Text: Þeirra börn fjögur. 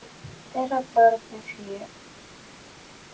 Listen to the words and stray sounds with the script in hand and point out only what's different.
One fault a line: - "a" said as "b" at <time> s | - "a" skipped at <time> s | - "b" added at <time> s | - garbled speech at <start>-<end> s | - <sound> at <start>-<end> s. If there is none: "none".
none